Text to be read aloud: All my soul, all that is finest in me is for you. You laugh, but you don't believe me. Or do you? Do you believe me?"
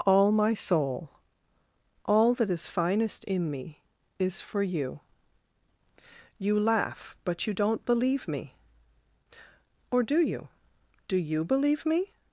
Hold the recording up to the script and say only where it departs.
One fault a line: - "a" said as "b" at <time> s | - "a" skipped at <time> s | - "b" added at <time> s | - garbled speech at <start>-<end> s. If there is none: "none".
none